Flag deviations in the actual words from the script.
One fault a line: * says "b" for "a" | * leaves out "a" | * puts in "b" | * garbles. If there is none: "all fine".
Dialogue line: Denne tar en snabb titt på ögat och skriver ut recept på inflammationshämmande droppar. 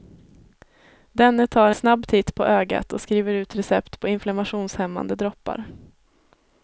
* leaves out "en"